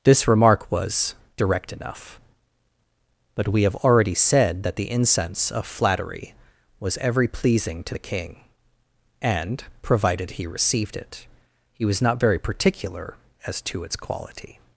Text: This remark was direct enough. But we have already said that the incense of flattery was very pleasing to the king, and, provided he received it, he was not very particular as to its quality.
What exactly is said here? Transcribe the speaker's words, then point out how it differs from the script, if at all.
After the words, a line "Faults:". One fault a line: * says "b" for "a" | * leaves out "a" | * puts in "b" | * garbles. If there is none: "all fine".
This remark was direct enough. But we have already said that the incense of flattery was every pleasing to the king, and, provided he received it, he was not very particular as to its quality.
Faults:
* says "every" for "very"